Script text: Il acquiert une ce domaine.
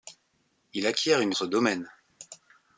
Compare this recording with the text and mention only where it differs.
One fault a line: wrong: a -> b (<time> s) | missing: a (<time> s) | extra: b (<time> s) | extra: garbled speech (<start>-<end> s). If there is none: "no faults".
no faults